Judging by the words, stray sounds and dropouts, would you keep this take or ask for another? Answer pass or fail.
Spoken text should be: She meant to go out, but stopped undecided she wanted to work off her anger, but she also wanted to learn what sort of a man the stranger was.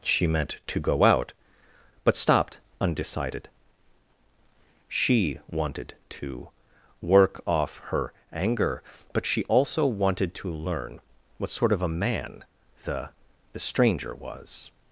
fail